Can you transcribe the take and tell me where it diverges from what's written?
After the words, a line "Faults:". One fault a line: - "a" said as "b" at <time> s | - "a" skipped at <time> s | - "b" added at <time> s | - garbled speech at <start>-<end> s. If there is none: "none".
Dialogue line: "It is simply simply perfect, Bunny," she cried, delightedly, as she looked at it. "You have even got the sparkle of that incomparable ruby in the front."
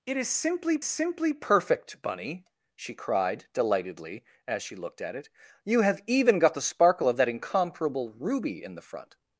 "It is simply simply perfect, Bunny," she cried, delightedly, as she looked at it. "You have even got the sparkle of that incomparable ruby in the front."
Faults:
none